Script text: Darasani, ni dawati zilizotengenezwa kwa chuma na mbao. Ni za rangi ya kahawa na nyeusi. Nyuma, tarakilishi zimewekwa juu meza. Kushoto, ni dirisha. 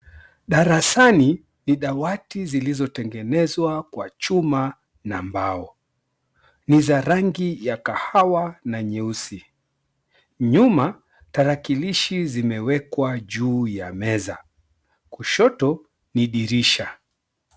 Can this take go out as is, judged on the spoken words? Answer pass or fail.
fail